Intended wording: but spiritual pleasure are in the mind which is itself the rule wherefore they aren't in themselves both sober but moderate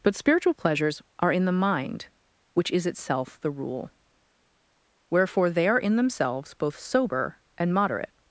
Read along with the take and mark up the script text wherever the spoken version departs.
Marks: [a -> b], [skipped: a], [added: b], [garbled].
but spiritual [pleasure -> pleasures] are in the mind which is itself the rule wherefore they [aren't -> are] in themselves both sober [but -> and] moderate